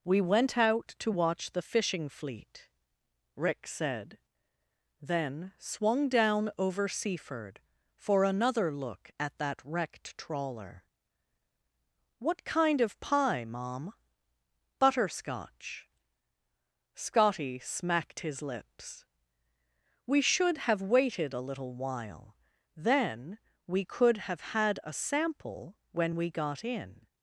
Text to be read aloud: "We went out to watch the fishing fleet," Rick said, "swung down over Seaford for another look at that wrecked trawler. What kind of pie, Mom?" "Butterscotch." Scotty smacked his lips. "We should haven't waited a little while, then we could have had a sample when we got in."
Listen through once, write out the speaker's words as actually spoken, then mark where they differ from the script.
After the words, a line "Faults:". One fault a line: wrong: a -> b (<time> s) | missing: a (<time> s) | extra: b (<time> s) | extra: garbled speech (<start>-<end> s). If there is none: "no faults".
"We went out to watch the fishing fleet," Rick said, "then swung down over Seaford for another look at that wrecked trawler. What kind of pie, Mom?" "Butterscotch." Scotty smacked his lips. "We should have waited a little while, then we could have had a sample when we got in."
Faults:
extra: then (5.0 s)
wrong: haven't -> have (20.6 s)